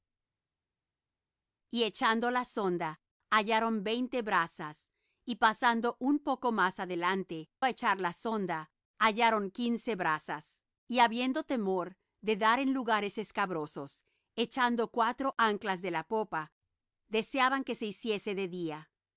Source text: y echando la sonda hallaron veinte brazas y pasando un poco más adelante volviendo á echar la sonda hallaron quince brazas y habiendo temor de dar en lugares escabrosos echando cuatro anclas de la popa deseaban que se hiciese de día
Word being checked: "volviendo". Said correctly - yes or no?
no